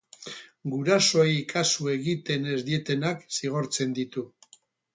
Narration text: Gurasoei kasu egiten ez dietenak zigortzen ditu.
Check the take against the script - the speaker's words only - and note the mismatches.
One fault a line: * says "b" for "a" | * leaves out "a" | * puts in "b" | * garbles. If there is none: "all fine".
all fine